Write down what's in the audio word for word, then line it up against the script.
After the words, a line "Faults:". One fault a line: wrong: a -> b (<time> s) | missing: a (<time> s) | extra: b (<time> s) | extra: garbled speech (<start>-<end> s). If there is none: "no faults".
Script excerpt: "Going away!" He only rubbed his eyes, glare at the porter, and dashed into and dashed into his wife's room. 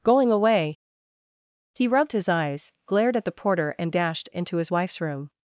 "Going away!" He rubbed his eyes, glared at the porter, and dashed into his wife's room.
Faults:
missing: only (1.9 s)
wrong: glare -> glared (2.9 s)
missing: and dashed into (4.6 s)